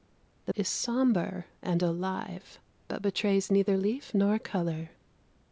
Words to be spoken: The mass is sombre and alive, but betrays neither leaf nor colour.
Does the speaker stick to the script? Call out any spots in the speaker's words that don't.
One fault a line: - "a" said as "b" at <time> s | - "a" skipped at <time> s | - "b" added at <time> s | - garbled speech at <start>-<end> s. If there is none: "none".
- "mass" skipped at 0.5 s